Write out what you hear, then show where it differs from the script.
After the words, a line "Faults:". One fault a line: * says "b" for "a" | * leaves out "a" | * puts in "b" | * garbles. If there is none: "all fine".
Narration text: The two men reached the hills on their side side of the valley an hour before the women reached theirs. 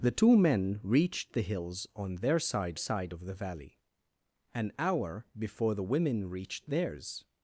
The two men reached the hills on their side side of the valley an hour before the women reached theirs.
Faults:
all fine